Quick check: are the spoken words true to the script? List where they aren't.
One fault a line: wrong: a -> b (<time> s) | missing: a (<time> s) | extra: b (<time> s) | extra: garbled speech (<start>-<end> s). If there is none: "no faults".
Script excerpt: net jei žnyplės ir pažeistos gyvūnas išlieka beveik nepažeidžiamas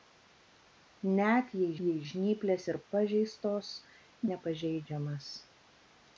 extra: jei (1.8 s)
missing: gyvūnas išlieka beveik (3.7 s)